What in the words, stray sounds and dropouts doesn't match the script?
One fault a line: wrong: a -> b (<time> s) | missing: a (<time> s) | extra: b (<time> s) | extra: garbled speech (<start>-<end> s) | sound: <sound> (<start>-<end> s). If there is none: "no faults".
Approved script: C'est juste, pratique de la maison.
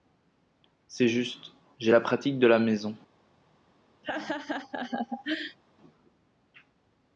extra: j'ai la (1.8 s)
sound: laugh (4.0-5.6 s)